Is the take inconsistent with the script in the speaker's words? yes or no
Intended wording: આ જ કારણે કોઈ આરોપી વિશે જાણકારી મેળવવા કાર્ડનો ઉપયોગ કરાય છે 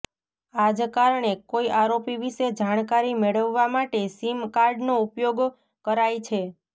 yes